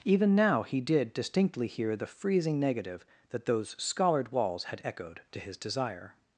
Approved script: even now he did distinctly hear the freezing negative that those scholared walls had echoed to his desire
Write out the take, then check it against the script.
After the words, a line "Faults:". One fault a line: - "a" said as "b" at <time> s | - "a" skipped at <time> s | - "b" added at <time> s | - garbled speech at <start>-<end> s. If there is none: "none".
even now he did distinctly hear the freezing negative that those scholared walls had echoed to his desire
Faults:
none